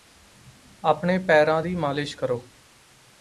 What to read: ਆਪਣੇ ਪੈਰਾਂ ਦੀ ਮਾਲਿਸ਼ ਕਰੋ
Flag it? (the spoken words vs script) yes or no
no